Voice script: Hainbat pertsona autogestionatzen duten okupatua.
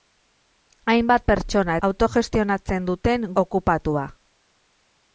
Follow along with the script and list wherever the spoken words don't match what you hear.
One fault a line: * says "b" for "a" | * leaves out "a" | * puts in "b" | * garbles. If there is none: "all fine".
all fine